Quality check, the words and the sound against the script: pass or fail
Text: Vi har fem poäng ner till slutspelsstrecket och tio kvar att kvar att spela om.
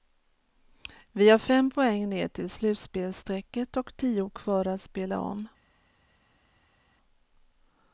fail